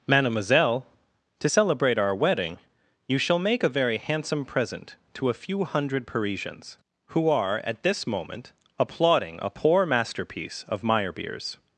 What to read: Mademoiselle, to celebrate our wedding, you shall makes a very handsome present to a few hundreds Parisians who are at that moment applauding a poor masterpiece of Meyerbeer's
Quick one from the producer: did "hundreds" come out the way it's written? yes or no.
no